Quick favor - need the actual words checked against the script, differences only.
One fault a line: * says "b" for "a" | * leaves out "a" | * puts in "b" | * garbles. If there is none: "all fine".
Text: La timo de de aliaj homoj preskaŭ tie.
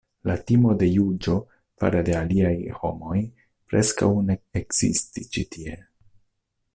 * puts in "juĝo fare"
* puts in "ne ekzistis ĉi"